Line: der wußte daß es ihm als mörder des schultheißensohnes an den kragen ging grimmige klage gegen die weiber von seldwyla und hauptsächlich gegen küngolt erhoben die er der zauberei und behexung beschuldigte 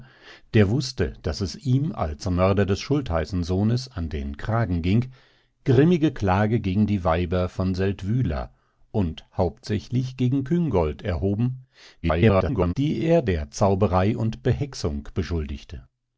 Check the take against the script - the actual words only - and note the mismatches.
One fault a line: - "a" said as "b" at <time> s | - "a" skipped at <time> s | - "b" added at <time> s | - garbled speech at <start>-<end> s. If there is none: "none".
- garbled speech at 12.0-12.7 s